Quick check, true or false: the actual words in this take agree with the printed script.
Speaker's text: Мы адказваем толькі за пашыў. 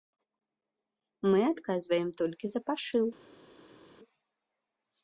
true